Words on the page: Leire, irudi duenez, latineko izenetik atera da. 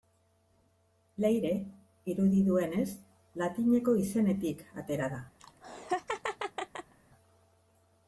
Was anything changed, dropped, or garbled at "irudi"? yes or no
no